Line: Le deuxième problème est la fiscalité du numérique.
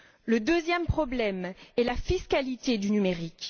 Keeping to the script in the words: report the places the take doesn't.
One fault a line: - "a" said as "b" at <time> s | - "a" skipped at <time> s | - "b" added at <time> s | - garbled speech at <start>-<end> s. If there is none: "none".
none